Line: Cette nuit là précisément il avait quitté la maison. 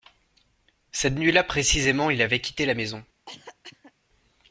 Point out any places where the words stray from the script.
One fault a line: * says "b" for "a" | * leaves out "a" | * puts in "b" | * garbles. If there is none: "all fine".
all fine